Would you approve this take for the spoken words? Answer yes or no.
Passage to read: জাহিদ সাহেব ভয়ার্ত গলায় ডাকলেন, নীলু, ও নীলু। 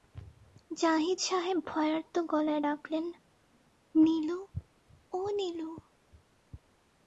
yes